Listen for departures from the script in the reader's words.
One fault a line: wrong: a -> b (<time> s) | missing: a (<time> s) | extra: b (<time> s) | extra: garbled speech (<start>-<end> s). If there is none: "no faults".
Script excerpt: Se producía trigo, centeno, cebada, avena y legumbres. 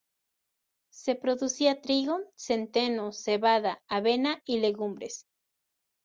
no faults